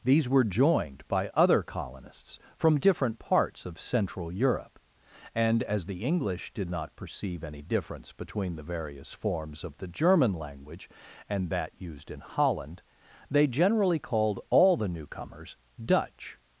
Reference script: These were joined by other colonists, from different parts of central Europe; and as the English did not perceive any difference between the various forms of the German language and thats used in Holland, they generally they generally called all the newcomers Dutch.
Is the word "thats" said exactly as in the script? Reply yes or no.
no